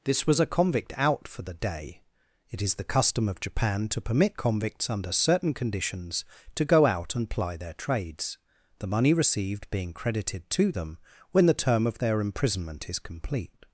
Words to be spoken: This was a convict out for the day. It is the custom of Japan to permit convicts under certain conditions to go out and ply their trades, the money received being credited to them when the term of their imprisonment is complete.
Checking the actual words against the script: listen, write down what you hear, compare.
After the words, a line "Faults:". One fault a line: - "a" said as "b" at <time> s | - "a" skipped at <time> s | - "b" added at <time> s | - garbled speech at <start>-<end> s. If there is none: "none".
This was a convict out for the day. It is the custom of Japan to permit convicts under certain conditions to go out and ply their trades, the money received being credited to them when the term of their imprisonment is complete.
Faults:
none